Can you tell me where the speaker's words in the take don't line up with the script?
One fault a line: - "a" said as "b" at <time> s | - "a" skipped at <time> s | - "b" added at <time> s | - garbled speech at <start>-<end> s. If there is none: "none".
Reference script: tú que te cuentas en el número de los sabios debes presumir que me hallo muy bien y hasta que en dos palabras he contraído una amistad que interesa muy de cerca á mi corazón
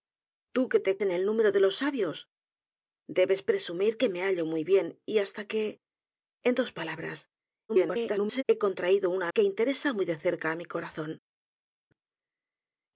- "cuentas" skipped at 1.0 s
- garbled speech at 7.7-8.4 s
- "amistad" skipped at 9.3 s